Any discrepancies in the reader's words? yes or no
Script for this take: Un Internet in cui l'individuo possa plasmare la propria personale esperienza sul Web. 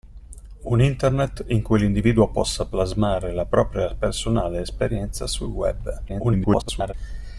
yes